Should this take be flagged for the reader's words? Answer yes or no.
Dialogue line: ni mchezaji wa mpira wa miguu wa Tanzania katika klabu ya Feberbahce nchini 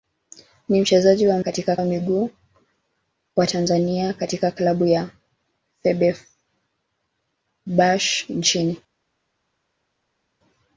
yes